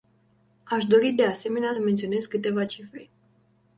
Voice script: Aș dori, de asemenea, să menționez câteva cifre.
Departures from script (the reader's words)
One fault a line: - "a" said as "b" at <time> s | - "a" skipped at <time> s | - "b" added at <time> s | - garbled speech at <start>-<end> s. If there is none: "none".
- "să" skipped at 1.7 s